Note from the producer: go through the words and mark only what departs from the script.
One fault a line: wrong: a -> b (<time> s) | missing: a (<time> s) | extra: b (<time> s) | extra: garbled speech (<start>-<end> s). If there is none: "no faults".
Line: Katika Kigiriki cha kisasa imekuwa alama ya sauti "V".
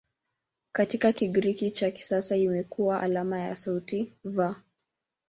no faults